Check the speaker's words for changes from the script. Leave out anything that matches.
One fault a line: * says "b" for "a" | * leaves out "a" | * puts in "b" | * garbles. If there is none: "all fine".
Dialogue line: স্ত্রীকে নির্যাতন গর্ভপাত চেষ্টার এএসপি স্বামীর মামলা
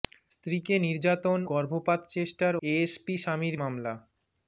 all fine